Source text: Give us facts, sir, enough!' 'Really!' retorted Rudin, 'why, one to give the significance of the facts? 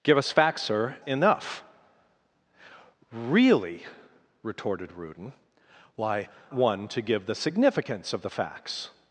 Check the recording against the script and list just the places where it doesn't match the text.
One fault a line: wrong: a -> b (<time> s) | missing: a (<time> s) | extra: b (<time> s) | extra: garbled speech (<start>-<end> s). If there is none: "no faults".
no faults